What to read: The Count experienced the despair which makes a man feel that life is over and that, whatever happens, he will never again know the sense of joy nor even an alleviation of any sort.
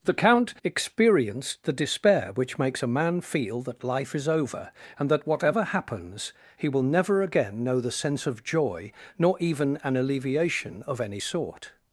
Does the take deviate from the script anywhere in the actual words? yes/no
no